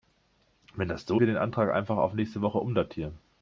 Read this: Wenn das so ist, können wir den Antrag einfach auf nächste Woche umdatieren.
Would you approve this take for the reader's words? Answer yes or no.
no